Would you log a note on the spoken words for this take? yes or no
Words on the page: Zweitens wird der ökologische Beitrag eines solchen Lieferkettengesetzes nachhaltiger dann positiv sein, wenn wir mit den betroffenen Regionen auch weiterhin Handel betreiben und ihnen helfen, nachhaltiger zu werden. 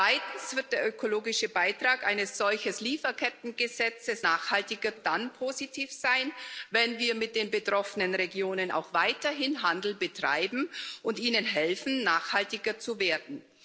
no